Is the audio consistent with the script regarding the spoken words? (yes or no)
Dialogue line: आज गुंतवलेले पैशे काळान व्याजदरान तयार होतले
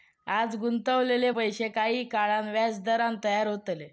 no